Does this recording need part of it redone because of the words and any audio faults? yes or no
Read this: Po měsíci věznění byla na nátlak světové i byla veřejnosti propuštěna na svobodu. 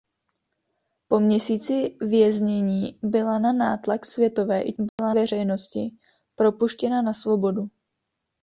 yes